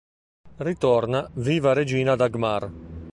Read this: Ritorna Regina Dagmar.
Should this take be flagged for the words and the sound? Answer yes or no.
yes